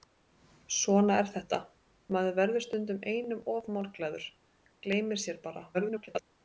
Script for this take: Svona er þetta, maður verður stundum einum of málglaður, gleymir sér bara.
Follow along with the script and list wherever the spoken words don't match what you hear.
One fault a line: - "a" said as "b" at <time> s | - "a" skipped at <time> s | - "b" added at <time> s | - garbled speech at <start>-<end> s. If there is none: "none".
- garbled speech at 5.7-6.2 s